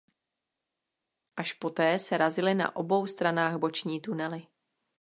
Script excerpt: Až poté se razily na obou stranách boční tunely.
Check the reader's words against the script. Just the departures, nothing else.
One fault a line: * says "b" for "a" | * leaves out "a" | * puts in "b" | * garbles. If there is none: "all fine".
all fine